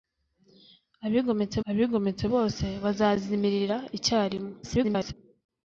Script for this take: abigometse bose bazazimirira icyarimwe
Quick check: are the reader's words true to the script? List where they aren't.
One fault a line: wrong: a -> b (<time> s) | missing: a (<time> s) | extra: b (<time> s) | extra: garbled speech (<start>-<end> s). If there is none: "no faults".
extra: abigometse (1.7 s)
extra: garbled speech (4.6-5.1 s)